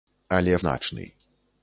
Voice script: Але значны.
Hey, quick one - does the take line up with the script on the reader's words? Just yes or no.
yes